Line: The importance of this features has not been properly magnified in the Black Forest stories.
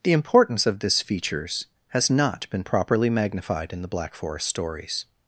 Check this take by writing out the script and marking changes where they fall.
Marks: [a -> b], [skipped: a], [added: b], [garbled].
The importance of this features has not been properly magnified in the Black Forest stories.